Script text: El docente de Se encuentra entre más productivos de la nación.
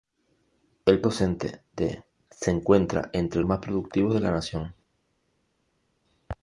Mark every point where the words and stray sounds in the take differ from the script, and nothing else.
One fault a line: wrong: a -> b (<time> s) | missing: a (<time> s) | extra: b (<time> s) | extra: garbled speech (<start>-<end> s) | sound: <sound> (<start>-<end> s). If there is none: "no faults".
no faults